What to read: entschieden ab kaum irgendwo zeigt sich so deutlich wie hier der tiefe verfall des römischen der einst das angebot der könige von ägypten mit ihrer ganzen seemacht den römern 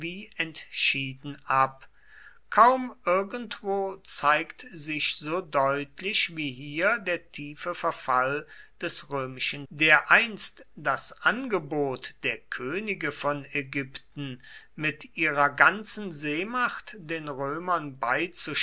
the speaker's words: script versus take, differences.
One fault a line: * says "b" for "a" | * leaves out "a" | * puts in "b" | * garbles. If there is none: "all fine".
all fine